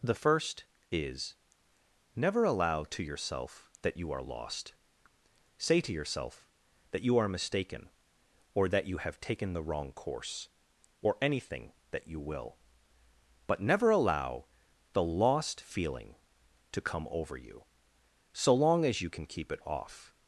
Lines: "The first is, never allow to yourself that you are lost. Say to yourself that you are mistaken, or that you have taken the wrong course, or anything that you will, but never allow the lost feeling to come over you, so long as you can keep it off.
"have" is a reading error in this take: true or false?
false